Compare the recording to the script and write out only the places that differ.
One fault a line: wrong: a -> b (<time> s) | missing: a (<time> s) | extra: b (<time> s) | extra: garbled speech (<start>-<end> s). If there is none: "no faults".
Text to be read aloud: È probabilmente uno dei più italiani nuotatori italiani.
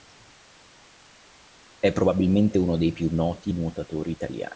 wrong: italiani -> noti (3.1 s)